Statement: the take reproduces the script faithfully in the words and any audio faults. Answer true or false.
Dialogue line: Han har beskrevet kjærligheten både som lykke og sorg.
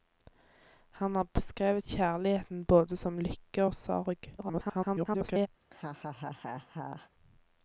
false